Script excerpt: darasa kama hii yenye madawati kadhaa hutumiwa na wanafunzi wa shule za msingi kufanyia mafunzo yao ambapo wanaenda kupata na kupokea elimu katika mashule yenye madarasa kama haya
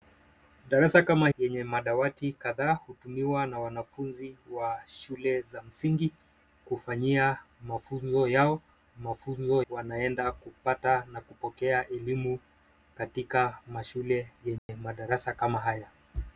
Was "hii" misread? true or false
true